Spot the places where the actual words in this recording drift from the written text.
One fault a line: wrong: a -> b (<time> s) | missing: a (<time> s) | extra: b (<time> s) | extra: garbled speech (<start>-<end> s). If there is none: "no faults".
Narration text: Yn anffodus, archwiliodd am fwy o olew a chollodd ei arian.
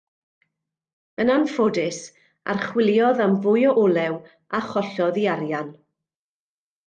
no faults